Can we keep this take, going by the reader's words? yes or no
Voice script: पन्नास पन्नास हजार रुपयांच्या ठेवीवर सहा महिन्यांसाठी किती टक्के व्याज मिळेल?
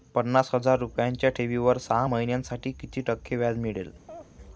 no